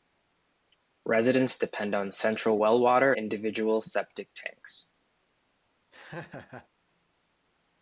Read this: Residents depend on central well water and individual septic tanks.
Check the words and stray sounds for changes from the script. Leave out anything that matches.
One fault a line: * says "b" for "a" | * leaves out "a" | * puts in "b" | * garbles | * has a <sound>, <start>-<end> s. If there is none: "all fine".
* leaves out "and"
* has a laugh, 5.9-6.7 s